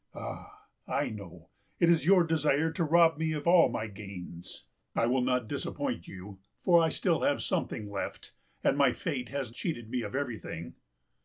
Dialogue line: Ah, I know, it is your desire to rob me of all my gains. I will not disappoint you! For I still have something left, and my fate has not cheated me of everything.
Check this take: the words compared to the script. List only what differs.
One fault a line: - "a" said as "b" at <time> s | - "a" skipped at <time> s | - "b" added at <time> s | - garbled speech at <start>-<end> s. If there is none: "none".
- "not" skipped at 9.5 s